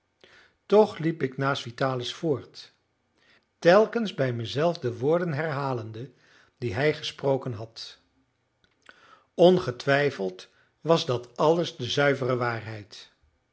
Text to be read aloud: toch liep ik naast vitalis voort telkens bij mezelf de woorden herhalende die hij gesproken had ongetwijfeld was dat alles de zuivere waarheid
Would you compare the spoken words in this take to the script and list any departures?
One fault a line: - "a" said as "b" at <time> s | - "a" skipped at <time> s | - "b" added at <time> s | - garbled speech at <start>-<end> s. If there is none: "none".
none